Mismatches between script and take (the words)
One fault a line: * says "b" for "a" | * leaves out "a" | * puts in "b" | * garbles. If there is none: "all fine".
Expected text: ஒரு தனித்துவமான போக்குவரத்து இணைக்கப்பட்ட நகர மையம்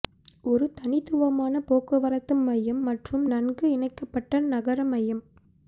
* puts in "மையம் மற்றும் நன்கு"